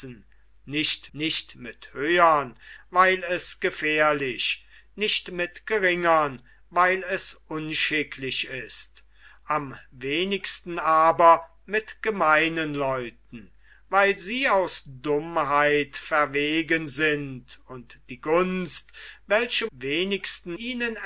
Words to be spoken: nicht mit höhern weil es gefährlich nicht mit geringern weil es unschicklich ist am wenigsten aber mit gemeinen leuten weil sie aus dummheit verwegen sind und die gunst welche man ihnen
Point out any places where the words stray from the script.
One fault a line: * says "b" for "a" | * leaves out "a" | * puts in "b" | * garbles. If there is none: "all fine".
* puts in "nicht"
* says "wenigsten" for "man"